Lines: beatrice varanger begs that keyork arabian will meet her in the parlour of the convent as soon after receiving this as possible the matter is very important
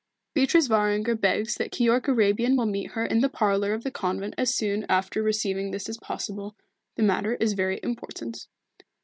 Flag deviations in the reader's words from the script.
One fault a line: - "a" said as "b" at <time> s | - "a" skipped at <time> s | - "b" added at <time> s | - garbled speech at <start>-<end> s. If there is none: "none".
none